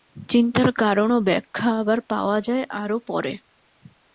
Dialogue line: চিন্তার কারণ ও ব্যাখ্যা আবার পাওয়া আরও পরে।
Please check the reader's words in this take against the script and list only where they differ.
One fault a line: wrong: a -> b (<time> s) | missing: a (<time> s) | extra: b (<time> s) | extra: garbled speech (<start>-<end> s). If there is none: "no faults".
extra: যায় (2.4 s)